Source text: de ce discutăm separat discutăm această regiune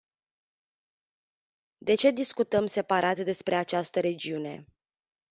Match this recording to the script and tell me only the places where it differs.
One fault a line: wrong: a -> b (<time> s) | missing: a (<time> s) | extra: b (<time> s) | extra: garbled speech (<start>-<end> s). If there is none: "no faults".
wrong: discutăm -> despre (3.2 s)